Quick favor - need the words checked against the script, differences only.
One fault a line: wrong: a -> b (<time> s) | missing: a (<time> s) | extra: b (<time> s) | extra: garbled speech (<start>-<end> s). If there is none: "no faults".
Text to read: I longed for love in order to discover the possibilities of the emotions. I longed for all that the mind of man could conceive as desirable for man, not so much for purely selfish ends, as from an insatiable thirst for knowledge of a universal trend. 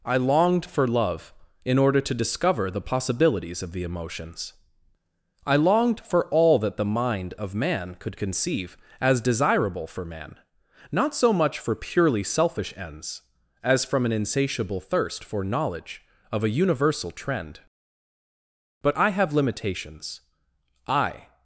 extra: But I have limitations I (18.8 s)